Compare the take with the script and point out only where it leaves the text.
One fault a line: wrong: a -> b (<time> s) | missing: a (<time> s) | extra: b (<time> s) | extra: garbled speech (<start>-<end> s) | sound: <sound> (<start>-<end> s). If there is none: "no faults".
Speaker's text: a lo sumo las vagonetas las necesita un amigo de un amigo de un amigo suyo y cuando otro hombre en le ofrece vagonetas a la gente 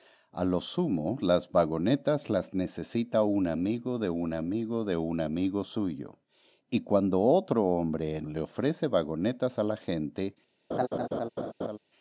sound: laugh (10.7-11.8 s)